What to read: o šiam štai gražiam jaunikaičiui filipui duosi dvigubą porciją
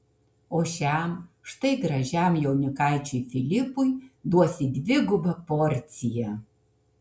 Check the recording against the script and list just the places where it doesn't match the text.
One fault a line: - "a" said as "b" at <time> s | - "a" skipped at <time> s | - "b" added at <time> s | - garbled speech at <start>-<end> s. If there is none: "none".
none